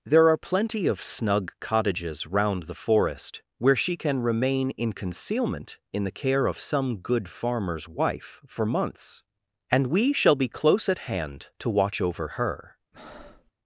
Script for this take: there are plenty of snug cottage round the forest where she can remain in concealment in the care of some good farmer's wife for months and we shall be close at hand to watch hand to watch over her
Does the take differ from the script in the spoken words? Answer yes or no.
yes